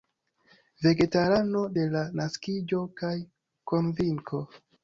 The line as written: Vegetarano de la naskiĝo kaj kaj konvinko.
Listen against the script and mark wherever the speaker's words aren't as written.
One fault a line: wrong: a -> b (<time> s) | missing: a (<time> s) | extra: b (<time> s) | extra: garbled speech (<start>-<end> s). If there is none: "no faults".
missing: kaj (3.2 s)